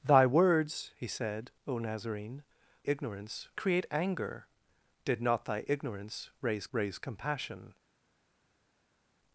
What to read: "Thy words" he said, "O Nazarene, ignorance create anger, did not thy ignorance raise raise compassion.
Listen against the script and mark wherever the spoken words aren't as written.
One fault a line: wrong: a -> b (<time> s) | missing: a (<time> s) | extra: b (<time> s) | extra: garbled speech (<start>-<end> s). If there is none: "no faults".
no faults